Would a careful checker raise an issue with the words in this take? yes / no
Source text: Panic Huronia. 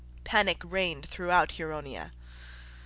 yes